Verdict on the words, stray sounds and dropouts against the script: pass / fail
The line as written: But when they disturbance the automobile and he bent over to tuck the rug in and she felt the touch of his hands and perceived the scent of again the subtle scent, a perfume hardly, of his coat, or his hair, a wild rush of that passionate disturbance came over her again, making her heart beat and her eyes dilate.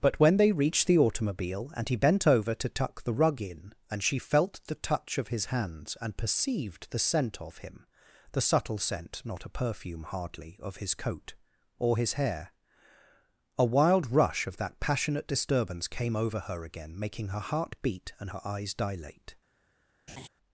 fail